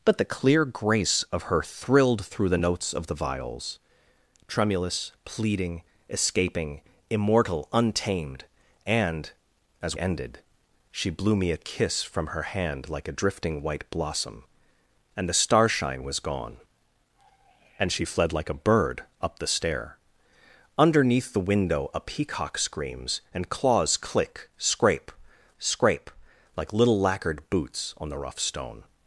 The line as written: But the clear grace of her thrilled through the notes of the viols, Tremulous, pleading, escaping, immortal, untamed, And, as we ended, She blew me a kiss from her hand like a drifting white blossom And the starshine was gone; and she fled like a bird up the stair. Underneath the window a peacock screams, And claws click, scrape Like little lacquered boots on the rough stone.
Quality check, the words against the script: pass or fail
fail